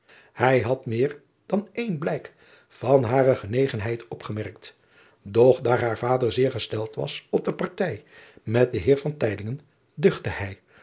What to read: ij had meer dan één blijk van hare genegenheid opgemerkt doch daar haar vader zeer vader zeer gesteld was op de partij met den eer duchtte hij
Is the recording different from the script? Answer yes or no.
yes